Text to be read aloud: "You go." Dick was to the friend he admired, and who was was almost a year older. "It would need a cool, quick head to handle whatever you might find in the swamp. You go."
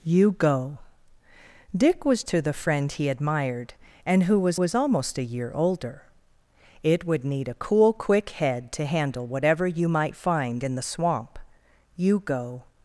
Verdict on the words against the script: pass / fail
pass